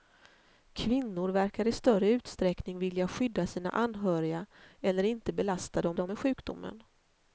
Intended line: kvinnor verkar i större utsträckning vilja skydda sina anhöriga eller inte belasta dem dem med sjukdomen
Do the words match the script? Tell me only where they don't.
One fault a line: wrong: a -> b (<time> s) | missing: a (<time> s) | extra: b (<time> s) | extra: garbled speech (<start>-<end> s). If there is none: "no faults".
no faults